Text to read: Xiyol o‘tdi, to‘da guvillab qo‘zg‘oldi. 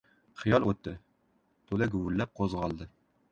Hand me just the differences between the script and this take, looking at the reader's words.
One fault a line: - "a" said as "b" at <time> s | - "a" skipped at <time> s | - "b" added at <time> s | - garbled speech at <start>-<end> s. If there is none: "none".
none